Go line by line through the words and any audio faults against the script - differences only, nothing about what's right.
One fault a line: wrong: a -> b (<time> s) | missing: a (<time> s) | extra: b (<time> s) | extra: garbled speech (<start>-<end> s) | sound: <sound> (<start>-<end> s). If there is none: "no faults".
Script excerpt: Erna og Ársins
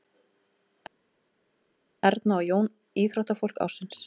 extra: Jón íþróttafólk (2.5 s)